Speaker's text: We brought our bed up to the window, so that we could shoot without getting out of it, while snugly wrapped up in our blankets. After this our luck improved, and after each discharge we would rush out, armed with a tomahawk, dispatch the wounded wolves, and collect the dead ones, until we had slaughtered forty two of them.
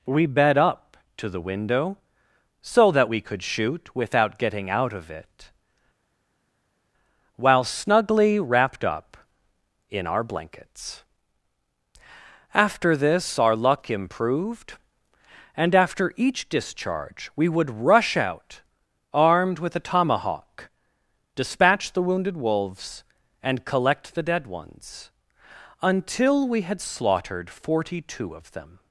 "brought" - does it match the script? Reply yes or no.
no